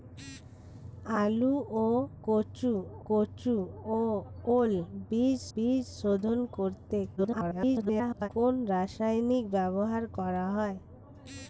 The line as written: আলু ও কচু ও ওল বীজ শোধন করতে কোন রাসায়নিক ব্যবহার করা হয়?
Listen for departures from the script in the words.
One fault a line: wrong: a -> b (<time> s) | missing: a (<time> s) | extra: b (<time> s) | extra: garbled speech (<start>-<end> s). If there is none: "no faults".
extra: কচু (3.1 s)
extra: বীজ (5.5 s)
extra: garbled speech (7.2-8.3 s)